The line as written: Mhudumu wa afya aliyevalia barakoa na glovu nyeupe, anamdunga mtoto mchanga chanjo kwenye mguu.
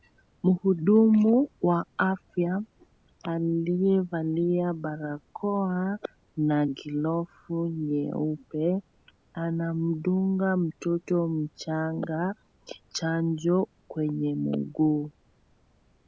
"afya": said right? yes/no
yes